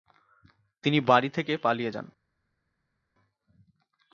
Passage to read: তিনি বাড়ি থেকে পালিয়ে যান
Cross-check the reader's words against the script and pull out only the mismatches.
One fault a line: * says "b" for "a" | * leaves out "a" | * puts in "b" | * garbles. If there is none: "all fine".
all fine